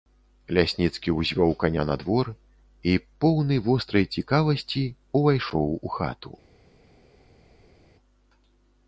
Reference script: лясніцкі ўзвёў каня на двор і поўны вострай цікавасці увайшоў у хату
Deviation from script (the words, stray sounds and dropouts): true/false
false